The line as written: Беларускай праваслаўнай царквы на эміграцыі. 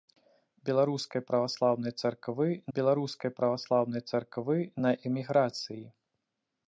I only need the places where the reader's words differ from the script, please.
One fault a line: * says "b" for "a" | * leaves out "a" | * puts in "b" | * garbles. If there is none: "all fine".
* puts in "беларускай праваслаўнай царквы"